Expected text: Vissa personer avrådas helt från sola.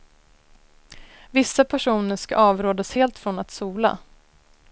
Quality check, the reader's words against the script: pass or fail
fail